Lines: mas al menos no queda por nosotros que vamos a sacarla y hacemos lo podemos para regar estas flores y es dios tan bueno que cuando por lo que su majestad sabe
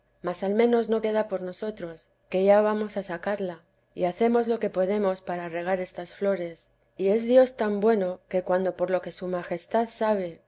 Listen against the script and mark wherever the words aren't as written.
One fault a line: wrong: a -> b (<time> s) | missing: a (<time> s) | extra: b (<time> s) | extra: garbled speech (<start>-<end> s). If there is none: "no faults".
extra: ya (2.4 s)
extra: que (4.6 s)